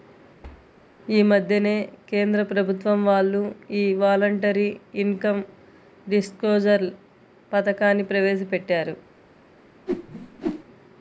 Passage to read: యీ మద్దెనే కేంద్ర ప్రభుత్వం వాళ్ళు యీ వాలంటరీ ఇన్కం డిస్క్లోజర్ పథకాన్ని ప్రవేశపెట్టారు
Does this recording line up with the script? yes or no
yes